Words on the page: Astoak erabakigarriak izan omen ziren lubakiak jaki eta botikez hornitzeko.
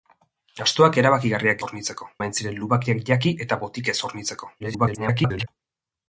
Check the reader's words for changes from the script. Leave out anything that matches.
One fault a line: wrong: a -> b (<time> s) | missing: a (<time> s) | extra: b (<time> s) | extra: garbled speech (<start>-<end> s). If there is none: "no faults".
wrong: izan -> hornitzeko (1.7 s)
extra: garbled speech (4.6-5.5 s)